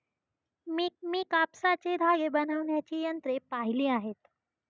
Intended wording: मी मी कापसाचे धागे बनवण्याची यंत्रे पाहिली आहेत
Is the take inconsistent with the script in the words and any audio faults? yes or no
no